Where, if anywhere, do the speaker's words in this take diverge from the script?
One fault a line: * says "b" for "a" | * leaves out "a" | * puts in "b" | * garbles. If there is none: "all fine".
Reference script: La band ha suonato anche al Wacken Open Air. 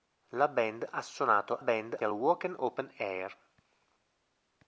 * says "band" for "anche"